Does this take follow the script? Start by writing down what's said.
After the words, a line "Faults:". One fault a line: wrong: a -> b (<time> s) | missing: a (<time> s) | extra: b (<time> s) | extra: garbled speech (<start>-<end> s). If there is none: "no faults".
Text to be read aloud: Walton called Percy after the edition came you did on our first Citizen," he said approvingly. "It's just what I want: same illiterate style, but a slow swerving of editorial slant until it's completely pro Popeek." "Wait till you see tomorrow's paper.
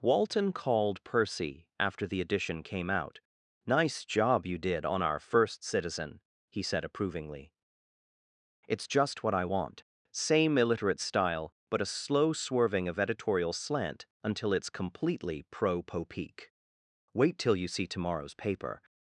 Walton called Percy after the edition came out. "Nice job you did on our first Citizen," he said approvingly. "It's just what I want: same illiterate style, but a slow swerving of editorial slant until it's completely pro Popeek." "Wait till you see tomorrow's paper.
Faults:
extra: out Nice job (2.9 s)